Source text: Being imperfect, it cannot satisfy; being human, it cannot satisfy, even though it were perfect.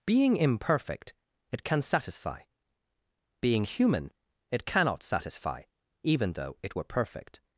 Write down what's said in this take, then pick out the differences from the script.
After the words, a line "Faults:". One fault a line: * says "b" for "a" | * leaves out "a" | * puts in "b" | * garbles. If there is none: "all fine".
Being imperfect, it can satisfy; being human, it cannot satisfy, even though it were perfect.
Faults:
* says "can" for "cannot"